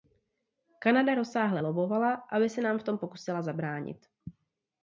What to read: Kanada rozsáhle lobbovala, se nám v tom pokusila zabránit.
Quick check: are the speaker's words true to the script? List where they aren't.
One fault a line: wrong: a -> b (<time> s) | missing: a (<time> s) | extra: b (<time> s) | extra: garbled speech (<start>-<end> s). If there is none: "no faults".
extra: aby (2.1 s)